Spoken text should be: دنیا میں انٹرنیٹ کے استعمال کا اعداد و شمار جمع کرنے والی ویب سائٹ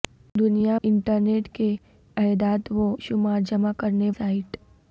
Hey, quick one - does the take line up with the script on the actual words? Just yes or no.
no